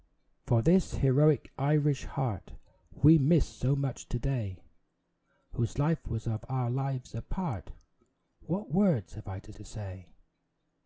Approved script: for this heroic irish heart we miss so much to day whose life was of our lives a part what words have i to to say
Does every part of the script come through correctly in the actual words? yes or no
yes